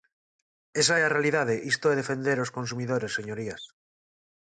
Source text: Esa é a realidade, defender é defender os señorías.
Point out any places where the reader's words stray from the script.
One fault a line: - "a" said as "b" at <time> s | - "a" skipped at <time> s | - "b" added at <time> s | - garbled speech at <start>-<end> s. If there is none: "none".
- "defender" said as "isto" at 1.7 s
- "consumidores" added at 2.6 s